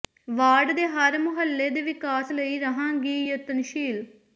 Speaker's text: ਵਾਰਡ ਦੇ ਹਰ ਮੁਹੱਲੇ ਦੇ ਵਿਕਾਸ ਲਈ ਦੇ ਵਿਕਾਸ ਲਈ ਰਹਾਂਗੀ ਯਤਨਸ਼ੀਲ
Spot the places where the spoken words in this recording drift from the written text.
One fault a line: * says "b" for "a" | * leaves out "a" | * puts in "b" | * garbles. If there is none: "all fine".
* leaves out "ਦੇ ਵਿਕਾਸ ਲਈ"